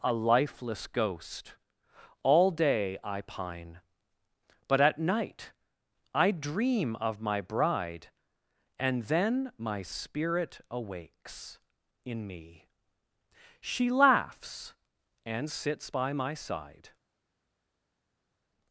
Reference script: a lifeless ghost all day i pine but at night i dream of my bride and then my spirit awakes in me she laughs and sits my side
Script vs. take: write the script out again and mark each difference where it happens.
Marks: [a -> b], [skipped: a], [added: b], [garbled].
a lifeless ghost all day i pine but at night i dream of my bride and then my spirit awakes in me she laughs and sits [added: by] my side